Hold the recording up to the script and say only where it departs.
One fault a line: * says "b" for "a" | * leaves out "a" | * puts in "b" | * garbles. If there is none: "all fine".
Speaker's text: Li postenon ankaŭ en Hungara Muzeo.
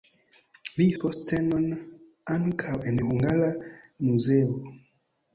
all fine